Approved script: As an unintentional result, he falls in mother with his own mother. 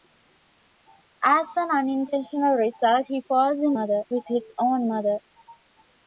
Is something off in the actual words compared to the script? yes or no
no